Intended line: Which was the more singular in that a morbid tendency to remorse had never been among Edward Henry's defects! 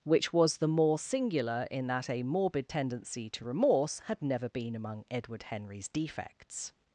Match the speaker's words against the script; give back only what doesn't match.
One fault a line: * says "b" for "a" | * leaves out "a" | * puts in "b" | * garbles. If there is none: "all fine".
all fine